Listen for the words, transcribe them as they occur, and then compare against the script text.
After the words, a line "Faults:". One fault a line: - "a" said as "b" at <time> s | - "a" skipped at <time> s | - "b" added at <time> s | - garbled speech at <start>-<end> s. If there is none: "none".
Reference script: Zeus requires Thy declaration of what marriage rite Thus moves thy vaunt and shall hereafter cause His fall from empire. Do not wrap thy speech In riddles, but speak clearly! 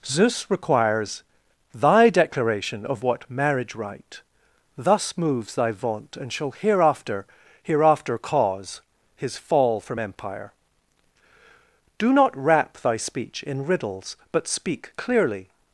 Zeus requires Thy declaration of what marriage rite Thus moves thy vaunt and shall hereafter hereafter cause His fall from empire. Do not wrap thy speech In riddles, but speak clearly!
Faults:
- "hereafter" added at 7.6 s